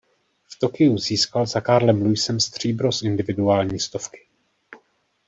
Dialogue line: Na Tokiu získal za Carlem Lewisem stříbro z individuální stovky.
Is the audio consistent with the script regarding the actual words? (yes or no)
no